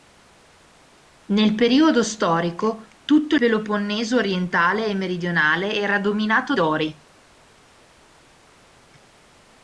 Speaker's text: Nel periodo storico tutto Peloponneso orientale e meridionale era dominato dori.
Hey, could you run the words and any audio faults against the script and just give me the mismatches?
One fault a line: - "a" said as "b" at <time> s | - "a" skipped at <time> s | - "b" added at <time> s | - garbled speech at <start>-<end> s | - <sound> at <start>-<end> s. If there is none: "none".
none